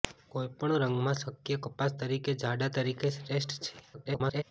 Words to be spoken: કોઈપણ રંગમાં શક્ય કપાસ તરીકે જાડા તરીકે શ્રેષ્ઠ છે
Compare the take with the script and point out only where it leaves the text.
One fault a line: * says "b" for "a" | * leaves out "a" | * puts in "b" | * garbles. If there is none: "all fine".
* garbles